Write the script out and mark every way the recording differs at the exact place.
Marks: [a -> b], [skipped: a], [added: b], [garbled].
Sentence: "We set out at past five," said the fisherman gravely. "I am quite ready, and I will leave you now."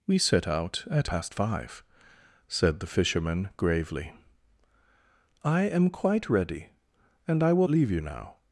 "We set out at past five," said the fisherman gravely. "I am quite ready, and I will leave you now."